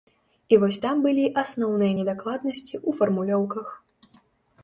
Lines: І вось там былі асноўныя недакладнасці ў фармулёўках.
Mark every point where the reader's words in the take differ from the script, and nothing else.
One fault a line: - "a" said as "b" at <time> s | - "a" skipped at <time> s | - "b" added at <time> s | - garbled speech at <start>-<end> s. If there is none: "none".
none